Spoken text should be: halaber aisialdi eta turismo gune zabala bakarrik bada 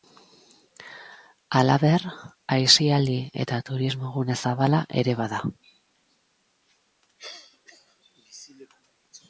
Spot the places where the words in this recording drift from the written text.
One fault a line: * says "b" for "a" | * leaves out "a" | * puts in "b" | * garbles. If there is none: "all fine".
* says "ere" for "bakarrik"